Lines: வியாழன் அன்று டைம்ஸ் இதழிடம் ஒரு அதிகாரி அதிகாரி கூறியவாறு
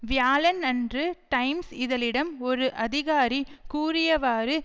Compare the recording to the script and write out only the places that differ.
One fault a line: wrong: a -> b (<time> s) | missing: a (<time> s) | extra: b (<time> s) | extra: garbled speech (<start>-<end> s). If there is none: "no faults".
missing: அதிகாரி (3.4 s)